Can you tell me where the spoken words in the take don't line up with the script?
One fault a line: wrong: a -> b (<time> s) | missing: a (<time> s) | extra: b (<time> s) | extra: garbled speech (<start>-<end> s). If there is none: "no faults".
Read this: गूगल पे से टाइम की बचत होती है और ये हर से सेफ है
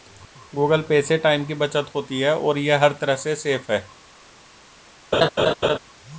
extra: तरह (3.0 s)